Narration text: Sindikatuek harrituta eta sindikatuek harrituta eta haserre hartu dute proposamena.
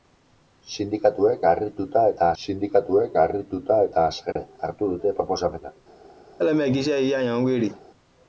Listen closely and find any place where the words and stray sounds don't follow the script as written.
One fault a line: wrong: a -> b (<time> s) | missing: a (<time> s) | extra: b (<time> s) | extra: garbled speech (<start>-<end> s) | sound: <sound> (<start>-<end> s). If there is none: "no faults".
sound: dropout (4.3-4.4 s)
sound: laugh (6.4-7.8 s)